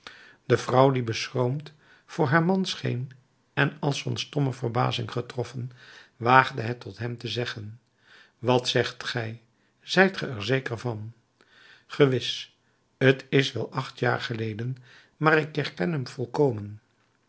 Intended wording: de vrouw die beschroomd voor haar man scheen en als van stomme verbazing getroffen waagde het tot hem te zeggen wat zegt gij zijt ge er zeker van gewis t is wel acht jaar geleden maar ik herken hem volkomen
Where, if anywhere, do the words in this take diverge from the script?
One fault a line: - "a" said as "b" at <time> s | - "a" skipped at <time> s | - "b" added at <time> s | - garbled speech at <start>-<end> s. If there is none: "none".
none